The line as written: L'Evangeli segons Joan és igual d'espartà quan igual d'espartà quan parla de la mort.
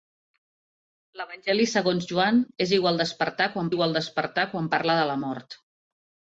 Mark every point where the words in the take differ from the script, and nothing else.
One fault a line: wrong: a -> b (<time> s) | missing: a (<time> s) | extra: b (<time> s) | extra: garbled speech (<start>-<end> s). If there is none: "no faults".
no faults